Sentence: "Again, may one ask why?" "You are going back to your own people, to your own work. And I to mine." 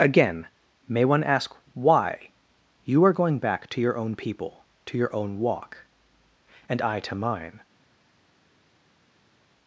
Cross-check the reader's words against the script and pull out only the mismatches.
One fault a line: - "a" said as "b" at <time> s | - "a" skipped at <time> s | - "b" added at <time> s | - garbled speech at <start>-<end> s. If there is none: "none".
- "work" said as "walk" at 5.4 s